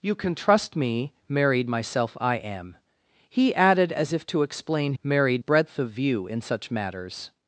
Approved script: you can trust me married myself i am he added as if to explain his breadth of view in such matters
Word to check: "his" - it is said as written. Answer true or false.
false